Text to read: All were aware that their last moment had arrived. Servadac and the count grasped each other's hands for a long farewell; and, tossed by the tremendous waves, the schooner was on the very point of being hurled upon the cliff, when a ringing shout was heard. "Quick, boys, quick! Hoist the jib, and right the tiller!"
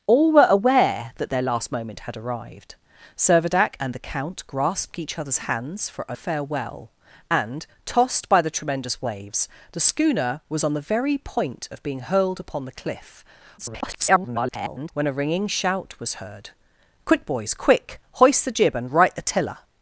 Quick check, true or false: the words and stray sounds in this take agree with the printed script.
false